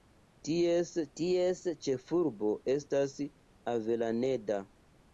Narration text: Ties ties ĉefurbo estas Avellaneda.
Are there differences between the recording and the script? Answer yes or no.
no